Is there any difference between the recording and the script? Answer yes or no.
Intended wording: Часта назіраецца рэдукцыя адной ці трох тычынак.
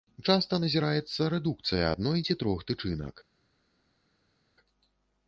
no